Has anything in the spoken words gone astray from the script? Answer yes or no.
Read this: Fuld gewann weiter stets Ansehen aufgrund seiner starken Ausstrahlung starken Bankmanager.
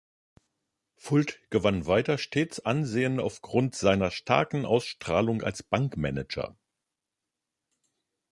yes